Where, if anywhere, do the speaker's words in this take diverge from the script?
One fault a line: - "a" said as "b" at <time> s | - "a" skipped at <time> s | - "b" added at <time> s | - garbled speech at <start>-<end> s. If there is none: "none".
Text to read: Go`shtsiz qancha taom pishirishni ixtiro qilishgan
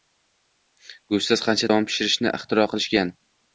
none